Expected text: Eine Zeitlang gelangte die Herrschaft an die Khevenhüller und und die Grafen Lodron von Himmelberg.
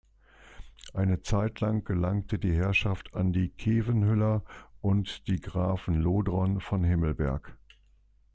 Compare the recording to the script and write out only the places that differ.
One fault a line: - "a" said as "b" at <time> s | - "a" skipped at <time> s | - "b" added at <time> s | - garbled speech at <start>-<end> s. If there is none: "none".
- "und" skipped at 5.3 s